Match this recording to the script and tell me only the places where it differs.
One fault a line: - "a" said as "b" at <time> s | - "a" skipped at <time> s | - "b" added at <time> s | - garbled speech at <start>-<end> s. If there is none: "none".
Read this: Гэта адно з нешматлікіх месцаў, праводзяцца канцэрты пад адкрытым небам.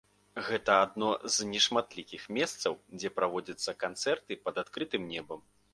- "дзе" added at 3.0 s